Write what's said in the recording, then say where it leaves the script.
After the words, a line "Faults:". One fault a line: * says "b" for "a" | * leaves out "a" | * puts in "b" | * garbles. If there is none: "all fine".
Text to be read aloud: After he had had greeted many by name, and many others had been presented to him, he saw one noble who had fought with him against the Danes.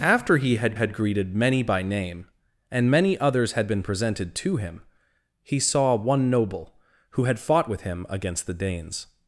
After he had had greeted many by name, and many others had been presented to him, he saw one noble who had fought with him against the Danes.
Faults:
all fine